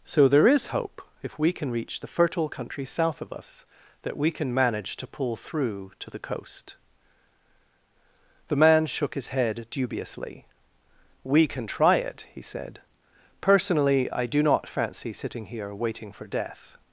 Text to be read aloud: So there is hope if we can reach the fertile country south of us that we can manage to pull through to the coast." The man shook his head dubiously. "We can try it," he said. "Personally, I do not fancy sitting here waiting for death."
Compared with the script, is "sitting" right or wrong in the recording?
right